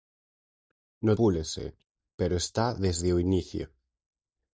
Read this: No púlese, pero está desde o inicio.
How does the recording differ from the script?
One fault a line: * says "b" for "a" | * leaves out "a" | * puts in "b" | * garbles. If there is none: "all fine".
all fine